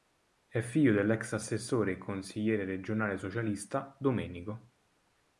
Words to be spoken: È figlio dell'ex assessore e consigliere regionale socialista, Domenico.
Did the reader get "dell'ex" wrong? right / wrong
right